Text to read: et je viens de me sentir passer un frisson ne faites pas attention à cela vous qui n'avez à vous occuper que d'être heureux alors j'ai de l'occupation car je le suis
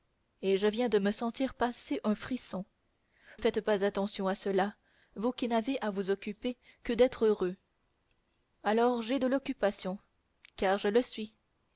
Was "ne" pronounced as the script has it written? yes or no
no